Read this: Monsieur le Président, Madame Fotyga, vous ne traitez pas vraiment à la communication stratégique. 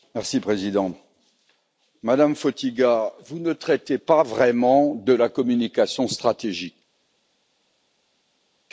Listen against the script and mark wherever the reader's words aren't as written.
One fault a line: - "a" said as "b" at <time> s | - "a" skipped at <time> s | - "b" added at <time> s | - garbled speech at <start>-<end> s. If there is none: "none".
- "à" said as "de" at 4.9 s